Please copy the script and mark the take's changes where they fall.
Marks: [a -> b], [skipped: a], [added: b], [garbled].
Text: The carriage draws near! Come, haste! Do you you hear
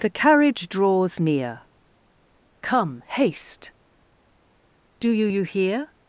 The carriage draws near! Come, haste! Do you you hear